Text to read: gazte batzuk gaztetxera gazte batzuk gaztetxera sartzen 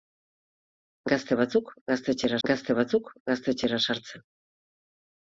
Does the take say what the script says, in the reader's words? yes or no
yes